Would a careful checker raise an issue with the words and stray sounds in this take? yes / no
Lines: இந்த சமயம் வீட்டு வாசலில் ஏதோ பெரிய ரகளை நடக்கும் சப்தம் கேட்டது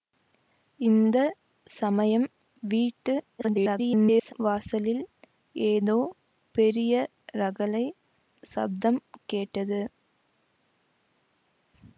yes